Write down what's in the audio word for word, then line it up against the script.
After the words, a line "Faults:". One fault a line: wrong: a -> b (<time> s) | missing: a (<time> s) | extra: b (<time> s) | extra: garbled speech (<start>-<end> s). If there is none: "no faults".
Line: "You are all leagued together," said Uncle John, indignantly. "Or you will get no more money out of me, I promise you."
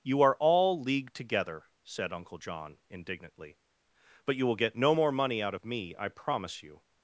"You are all leagued together," said Uncle John, indignantly. "But you will get no more money out of me, I promise you."
Faults:
wrong: Or -> But (4.2 s)